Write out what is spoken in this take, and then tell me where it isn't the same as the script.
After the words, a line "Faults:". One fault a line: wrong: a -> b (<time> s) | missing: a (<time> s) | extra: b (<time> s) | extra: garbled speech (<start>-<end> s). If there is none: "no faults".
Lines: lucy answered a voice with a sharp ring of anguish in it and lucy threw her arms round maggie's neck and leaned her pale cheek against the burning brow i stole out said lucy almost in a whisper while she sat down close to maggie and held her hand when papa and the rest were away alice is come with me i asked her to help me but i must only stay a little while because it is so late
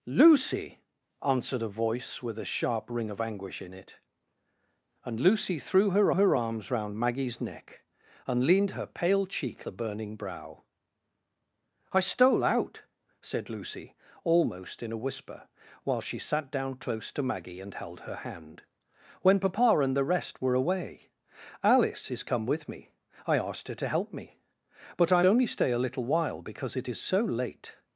lucy answered a voice with a sharp ring of anguish in it and lucy threw her her arms round maggie's neck and leaned her pale cheek the burning brow i stole out said lucy almost in a whisper while she sat down close to maggie and held her hand when papa and the rest were away alice is come with me i asked her to help me but i only stay a little while because it is so late
Faults:
extra: her (6.1 s)
missing: against (9.7 s)
missing: must (25.2 s)